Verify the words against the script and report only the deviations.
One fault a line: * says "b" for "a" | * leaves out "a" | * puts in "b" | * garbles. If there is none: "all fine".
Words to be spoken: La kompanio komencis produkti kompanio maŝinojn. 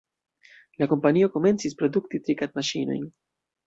* says "trikad" for "kompanio"